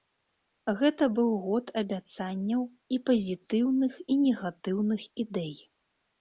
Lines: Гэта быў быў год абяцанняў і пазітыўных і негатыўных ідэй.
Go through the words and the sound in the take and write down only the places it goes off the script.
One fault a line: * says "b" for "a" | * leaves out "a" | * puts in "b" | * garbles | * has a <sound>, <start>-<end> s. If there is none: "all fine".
* leaves out "быў"